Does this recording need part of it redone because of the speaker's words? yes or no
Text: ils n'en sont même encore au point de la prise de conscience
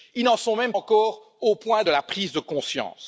no